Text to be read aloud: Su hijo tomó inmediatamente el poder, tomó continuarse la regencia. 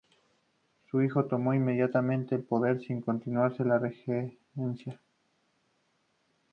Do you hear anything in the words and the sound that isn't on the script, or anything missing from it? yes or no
yes